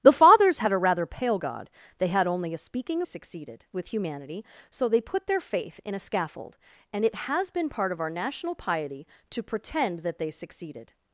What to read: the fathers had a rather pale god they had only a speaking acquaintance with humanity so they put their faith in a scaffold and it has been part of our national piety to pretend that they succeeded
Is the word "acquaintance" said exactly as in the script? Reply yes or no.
no